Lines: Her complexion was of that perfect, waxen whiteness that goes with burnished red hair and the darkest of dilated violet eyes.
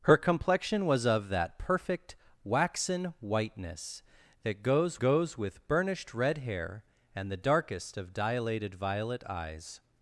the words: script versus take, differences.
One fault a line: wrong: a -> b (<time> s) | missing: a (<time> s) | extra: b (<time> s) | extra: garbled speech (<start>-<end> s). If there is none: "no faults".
extra: goes (5.0 s)